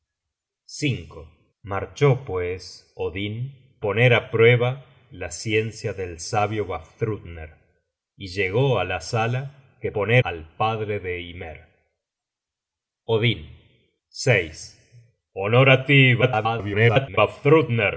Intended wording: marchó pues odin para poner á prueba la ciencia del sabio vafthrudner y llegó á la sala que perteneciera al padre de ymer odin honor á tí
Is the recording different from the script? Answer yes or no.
yes